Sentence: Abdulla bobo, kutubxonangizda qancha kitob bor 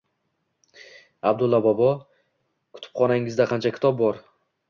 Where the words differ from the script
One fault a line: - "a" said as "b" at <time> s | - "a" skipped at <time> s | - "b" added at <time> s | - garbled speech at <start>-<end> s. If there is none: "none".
none